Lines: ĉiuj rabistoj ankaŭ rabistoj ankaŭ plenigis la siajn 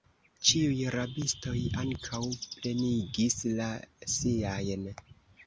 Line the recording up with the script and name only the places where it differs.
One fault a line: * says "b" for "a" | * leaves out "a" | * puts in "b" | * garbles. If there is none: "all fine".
* leaves out "rabistoj ankaŭ"